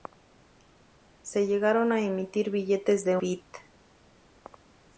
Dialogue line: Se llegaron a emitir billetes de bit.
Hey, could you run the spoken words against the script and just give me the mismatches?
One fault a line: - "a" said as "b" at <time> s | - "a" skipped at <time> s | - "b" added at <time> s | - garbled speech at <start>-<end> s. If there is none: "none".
none